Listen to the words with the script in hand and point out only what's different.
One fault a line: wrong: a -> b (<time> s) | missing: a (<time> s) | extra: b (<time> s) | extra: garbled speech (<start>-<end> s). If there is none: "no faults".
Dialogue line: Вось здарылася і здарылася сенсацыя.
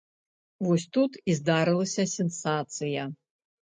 wrong: здарылася -> тут (1.0 s)